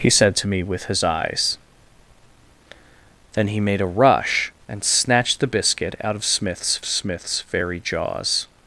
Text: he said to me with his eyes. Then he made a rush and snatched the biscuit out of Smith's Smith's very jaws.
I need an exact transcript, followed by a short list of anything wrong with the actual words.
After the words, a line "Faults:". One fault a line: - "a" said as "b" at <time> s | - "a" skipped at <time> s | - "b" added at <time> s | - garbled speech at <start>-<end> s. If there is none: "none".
he said to me with his eyes. Then he made a rush and snatched the biscuit out of Smith's Smith's very jaws.
Faults:
none